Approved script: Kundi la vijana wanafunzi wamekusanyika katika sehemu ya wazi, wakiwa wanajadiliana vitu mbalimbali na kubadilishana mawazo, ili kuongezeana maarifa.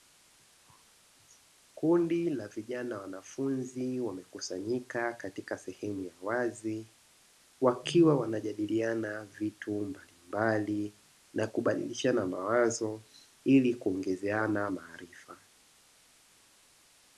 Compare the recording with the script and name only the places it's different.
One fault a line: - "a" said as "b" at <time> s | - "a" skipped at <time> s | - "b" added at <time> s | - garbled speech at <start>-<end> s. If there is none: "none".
none